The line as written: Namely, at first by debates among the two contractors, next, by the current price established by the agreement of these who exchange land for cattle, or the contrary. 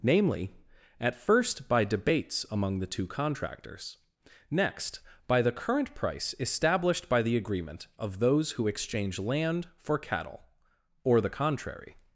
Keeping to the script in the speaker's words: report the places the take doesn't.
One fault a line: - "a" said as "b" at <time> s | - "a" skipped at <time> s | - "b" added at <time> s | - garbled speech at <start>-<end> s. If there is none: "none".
- "these" said as "those" at 8.2 s